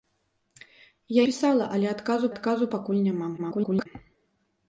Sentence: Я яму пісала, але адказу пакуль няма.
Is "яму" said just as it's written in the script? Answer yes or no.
no